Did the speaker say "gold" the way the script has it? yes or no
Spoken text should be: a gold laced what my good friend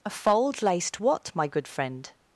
no